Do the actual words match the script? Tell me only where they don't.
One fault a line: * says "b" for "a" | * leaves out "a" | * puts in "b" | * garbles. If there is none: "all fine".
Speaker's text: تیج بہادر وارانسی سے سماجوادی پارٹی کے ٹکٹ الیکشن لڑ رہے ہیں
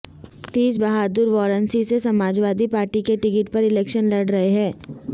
* puts in "پر"